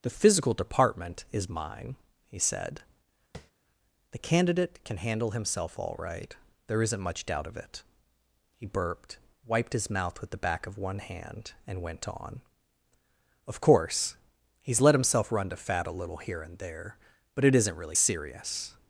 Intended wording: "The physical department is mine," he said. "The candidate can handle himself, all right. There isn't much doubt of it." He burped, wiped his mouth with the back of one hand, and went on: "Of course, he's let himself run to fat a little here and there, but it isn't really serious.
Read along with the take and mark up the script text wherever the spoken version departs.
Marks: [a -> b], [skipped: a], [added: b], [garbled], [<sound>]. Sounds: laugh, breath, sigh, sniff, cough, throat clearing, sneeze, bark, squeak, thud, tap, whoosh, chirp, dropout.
"The physical department is mine," he said. [tap] "The candidate can handle himself, all right. There isn't much doubt of it." He burped, wiped his mouth with the back of one hand, and went on: "Of course, he's let himself run to fat a little here and there, but it isn't really serious.